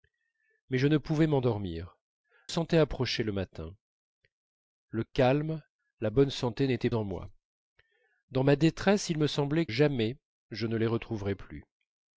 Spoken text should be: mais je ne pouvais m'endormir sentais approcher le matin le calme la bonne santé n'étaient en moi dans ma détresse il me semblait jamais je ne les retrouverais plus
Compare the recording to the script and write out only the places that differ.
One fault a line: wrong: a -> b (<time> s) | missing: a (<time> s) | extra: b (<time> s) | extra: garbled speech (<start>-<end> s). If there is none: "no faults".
no faults